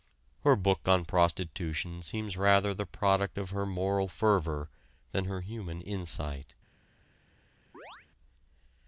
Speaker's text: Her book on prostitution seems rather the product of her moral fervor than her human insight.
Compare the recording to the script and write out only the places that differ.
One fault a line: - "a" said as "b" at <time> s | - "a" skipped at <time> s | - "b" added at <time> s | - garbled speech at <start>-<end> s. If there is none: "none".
none